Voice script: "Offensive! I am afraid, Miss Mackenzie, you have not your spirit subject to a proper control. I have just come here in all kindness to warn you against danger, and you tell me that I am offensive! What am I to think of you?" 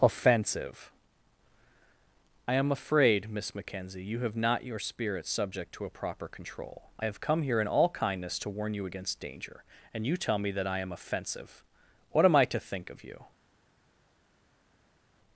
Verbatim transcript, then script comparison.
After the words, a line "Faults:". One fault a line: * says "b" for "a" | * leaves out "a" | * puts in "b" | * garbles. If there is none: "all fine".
"Offensive! I am afraid, Miss Mackenzie, you have not your spirit subject to a proper control. I have come here in all kindness to warn you against danger, and you tell me that I am offensive! What am I to think of you?"
Faults:
* leaves out "just"